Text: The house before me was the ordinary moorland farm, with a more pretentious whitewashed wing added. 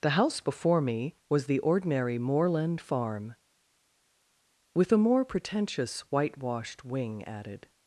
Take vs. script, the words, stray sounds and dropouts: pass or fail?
pass